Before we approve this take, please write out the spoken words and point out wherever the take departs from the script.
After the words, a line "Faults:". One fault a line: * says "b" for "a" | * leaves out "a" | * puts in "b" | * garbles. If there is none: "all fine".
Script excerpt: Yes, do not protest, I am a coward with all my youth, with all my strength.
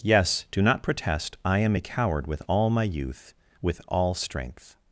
Yes, do not protest, I am a coward with all my youth, with all strength.
Faults:
* leaves out "my"